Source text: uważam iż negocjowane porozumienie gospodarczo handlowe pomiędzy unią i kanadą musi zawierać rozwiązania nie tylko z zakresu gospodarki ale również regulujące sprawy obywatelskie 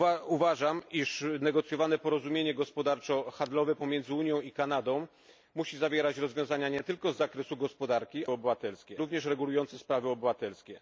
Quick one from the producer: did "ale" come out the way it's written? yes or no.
no